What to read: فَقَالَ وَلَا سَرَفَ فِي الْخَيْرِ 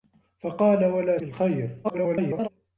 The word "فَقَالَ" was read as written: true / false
true